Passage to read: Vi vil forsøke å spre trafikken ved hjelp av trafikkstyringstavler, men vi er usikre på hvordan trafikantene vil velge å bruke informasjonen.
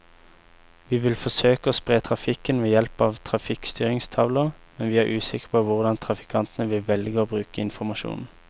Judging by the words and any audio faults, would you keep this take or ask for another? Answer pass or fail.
pass